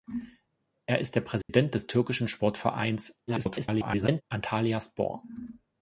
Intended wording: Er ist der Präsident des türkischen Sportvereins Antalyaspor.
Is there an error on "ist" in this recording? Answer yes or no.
no